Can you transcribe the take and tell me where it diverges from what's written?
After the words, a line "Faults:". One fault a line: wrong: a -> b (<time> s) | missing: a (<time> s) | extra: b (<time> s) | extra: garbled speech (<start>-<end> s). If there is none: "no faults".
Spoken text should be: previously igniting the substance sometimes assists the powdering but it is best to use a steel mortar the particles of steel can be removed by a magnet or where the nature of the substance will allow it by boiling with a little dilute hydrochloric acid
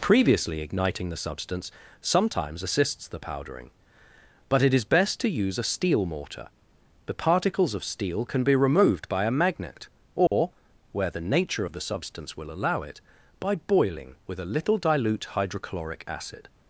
previously igniting the substance sometimes assists the powdering but it is best to use a steel mortar the particles of steel can be removed by a magnet or where the nature of the substance will allow it by boiling with a little dilute hydrochloric acid
Faults:
no faults